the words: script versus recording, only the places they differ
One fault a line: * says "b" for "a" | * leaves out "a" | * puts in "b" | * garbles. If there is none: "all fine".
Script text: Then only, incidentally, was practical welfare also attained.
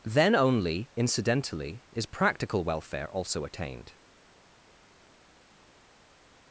* says "is" for "was"